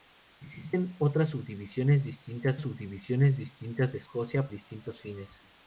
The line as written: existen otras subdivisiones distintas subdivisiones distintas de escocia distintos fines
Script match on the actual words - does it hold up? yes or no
yes